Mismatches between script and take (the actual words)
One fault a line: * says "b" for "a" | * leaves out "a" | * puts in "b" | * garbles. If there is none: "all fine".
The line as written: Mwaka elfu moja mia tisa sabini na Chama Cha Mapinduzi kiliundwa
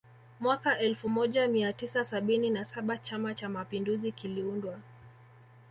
* puts in "saba"